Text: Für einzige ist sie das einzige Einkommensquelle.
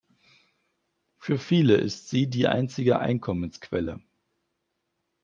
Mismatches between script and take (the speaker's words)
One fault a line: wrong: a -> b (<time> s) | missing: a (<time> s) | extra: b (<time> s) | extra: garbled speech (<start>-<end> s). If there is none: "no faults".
wrong: einzige -> viele (1.4 s)
wrong: das -> die (2.3 s)